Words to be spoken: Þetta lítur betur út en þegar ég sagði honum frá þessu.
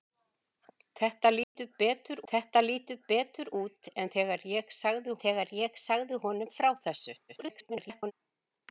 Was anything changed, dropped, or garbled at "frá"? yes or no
no